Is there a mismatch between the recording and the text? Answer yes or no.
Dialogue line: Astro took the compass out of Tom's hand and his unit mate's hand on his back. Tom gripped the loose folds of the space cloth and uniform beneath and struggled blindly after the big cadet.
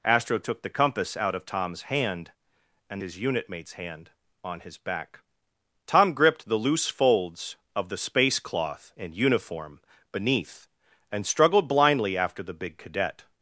no